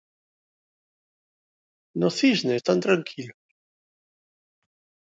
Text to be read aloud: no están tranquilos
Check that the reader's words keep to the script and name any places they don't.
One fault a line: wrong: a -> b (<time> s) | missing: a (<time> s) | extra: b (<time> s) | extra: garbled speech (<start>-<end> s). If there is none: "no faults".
extra: cisne (2.1 s)